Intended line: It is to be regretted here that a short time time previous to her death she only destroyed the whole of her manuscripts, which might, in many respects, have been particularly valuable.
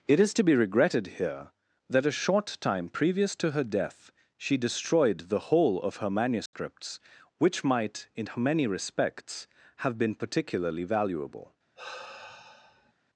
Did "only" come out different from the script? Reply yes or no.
yes